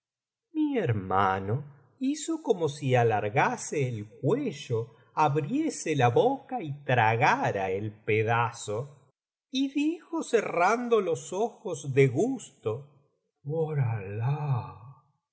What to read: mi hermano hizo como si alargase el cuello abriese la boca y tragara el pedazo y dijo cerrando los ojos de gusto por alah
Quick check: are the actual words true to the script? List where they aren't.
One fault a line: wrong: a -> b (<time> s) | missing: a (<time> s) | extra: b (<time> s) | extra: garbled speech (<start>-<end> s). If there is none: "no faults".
no faults